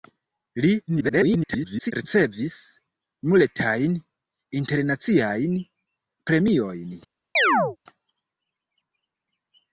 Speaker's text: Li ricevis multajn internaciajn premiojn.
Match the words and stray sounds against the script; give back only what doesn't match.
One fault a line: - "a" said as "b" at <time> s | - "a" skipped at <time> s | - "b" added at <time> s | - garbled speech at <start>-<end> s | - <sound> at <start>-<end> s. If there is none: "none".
- garbled speech at 0.9-1.9 s
- chirp at 7.4-7.8 s